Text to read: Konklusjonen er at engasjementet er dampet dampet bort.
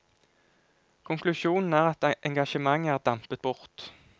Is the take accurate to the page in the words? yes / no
no